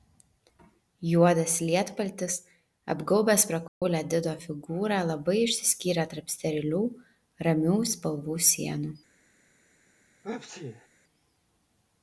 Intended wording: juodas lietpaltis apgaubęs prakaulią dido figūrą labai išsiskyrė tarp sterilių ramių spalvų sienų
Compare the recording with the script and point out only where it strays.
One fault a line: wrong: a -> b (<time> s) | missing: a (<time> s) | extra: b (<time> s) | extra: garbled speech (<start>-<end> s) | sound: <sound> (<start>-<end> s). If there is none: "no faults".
sound: dropout (3.7-3.8 s)
sound: sneeze (10.2-10.9 s)